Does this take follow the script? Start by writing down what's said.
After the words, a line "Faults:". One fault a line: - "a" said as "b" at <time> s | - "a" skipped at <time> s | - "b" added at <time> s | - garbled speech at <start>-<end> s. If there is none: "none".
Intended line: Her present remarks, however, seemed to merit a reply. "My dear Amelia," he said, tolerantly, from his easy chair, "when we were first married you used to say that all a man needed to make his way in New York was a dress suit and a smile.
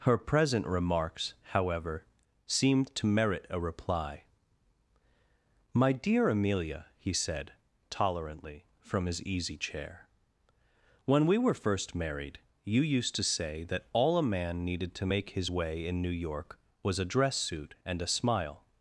Her present remarks, however, seemed to merit a reply. "My dear Amelia," he said, tolerantly, from his easy chair, "when we were first married you used to say that all a man needed to make his way in New York was a dress suit and a smile.
Faults:
none